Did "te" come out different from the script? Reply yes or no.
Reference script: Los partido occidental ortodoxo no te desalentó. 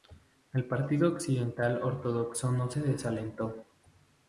yes